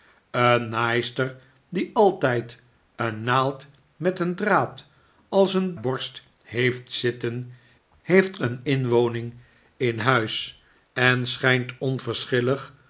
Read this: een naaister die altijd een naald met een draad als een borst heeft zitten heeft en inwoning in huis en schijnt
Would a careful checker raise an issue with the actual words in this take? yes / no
no